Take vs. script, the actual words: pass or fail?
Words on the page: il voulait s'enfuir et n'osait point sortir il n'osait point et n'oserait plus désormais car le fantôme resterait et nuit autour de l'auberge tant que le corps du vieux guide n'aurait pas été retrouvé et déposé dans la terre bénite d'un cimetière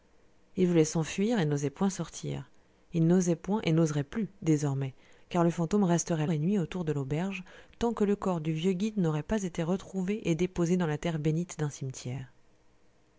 pass